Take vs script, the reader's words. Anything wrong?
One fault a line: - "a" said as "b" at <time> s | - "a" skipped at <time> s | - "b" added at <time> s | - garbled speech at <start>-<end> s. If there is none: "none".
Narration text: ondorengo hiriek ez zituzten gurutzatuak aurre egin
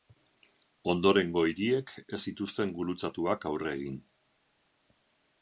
none